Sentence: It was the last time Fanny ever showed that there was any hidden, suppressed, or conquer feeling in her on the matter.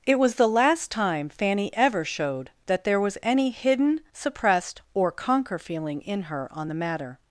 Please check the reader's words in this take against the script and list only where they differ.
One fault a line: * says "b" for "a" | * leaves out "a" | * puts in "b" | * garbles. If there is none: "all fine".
all fine